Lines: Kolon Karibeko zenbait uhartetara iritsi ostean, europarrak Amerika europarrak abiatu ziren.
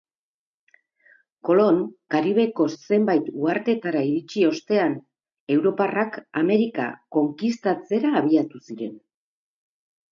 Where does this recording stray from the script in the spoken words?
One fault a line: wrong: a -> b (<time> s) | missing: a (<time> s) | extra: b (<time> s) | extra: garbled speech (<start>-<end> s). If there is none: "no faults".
wrong: europarrak -> konkistatzera (7.2 s)